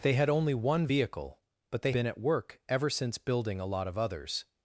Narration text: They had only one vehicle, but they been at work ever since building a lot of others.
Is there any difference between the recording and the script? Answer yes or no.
no